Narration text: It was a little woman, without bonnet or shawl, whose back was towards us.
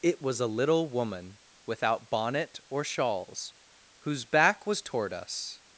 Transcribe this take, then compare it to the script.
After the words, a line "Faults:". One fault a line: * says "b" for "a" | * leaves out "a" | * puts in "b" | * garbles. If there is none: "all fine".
It was a little woman, without bonnet or shawls, whose back was toward us.
Faults:
* says "shawls" for "shawl"
* says "toward" for "towards"